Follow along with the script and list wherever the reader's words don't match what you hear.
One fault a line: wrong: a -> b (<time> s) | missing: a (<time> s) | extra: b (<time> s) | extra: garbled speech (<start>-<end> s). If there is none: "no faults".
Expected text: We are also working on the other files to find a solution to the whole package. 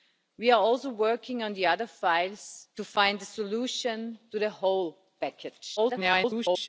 extra: garbled speech (5.8-6.7 s)